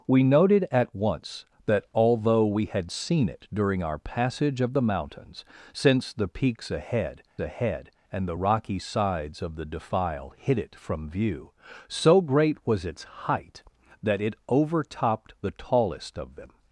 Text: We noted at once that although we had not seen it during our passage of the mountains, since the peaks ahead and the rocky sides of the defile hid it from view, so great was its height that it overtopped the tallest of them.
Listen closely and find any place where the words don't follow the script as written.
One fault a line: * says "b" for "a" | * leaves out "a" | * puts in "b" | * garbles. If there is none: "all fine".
* leaves out "not"
* puts in "ahead"